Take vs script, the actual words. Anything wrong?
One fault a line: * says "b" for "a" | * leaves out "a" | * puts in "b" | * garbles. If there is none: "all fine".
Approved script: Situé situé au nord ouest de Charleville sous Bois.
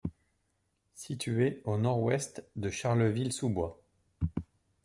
* leaves out "situé"